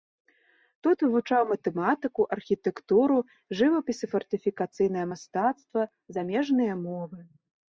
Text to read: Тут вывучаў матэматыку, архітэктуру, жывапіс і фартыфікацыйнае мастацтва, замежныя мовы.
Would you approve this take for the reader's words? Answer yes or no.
yes